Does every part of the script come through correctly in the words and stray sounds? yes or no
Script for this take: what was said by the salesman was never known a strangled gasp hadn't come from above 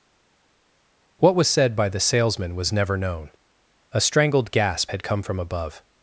no